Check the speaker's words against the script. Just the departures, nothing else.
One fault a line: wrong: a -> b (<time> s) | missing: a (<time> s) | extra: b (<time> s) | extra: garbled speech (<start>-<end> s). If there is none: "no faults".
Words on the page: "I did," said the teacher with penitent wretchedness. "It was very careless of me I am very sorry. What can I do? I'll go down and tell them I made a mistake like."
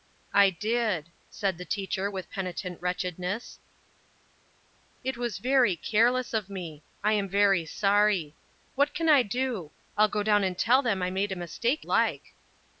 no faults